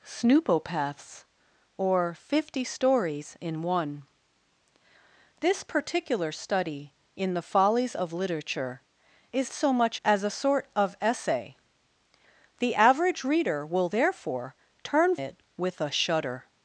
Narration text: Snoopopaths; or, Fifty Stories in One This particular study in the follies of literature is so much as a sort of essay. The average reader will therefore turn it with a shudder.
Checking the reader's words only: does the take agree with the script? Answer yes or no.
yes